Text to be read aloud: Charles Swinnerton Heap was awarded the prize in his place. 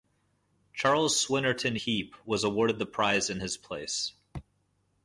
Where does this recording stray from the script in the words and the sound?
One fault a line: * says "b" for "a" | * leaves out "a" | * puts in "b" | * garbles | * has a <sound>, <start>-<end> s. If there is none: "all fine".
all fine